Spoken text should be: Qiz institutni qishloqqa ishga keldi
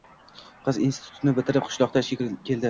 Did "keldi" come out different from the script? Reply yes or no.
no